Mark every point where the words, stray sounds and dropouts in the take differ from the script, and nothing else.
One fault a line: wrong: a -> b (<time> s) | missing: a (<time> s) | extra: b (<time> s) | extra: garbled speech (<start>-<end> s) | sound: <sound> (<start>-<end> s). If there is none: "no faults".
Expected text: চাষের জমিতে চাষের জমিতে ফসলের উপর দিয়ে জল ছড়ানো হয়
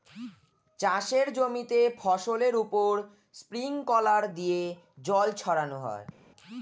missing: চাষের জমিতে (1.8 s)
extra: স্প্রিংকলার (3.3 s)